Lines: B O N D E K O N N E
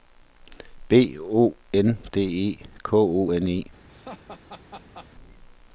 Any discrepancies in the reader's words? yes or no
yes